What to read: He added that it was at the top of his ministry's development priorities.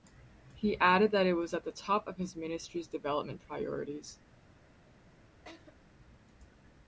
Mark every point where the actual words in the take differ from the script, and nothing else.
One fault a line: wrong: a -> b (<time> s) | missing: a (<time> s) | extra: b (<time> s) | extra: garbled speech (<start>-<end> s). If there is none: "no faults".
no faults